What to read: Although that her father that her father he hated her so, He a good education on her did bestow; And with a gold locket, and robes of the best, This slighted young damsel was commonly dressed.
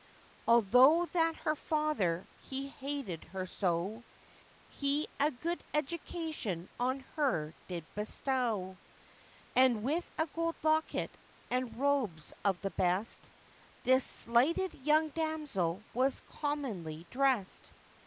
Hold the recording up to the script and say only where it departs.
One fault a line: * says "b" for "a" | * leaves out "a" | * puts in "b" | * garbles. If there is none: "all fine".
* leaves out "that her father"